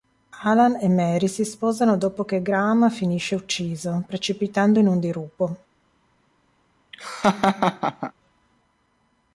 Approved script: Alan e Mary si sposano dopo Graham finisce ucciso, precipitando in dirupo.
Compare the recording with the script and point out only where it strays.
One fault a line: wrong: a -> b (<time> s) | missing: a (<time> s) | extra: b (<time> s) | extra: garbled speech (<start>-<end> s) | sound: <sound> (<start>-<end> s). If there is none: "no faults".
extra: che (2.2 s)
extra: un (4.9 s)
sound: laugh (6.9-8.1 s)